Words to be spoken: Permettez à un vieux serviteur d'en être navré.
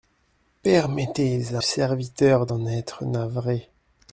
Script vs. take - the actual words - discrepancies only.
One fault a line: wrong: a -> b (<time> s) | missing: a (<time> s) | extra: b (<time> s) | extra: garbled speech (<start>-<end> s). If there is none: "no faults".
missing: un vieux (1.6 s)